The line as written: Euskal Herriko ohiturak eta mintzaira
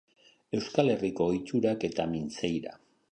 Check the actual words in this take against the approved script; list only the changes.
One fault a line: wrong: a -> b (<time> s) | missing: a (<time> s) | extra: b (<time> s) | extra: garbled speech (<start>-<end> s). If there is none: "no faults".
no faults